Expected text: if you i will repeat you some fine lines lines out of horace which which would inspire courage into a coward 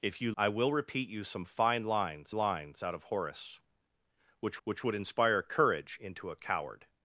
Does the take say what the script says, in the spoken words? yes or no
yes